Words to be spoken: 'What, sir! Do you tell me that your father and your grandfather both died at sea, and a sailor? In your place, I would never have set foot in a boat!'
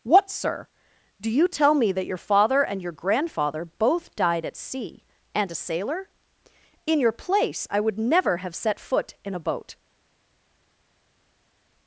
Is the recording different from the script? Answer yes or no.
no